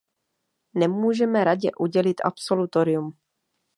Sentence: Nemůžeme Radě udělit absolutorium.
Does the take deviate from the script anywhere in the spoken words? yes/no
no